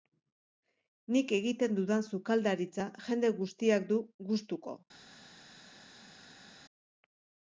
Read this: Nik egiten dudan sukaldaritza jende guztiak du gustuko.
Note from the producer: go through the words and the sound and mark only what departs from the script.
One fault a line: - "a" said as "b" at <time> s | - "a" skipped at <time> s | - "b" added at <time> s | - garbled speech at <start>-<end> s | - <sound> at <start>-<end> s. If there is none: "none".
none